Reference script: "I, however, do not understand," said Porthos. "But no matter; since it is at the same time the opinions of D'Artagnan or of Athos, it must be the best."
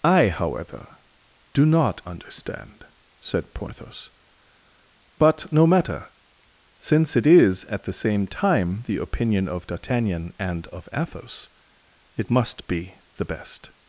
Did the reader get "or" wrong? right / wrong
wrong